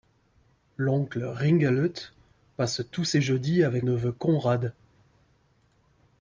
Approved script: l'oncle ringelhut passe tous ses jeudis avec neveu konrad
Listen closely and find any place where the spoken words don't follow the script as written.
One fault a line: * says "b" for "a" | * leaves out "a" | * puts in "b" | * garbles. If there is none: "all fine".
all fine